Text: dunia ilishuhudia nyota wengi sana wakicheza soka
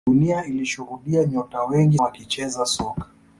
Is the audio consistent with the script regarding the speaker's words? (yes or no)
no